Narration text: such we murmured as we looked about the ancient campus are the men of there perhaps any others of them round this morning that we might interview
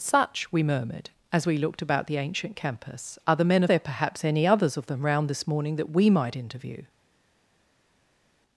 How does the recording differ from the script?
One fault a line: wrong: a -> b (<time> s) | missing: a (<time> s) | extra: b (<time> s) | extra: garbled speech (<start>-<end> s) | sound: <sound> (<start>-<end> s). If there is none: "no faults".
no faults